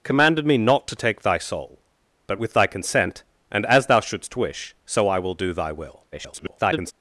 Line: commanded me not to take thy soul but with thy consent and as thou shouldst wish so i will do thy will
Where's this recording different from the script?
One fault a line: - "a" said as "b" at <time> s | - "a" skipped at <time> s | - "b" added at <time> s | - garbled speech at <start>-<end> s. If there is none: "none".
- garbled speech at 6.1-6.9 s